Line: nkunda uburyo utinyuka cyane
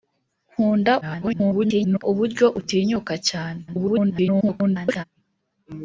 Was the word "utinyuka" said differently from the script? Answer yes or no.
no